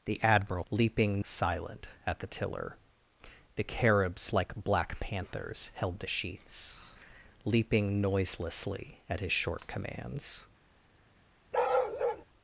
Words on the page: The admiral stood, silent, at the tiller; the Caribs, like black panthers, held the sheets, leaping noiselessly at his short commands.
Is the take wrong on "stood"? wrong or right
wrong